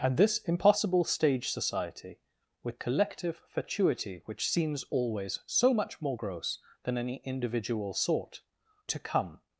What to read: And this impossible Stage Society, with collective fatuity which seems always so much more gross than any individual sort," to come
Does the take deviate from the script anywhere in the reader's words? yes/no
no